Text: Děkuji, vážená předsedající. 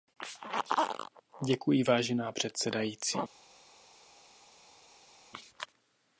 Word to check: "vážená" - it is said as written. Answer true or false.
true